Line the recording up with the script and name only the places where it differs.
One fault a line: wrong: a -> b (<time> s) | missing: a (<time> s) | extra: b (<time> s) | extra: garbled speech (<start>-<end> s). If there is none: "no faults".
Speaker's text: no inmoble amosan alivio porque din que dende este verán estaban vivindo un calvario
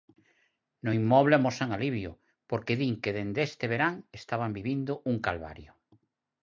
no faults